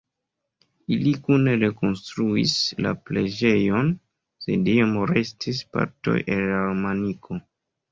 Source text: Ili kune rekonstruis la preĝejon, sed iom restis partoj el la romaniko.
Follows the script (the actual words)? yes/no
yes